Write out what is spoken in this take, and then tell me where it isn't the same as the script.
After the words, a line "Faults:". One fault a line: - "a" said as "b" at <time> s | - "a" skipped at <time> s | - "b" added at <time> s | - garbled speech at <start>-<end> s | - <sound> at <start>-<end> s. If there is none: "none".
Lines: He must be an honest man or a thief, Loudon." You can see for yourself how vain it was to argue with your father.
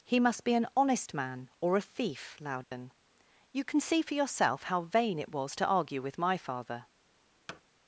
He must be an honest man or a thief, Loudon." You can see for yourself how vain it was to argue with my father.
Faults:
- dropout at 2.6-2.7 s
- "your" said as "my" at 6.2 s
- thud at 7.5-7.6 s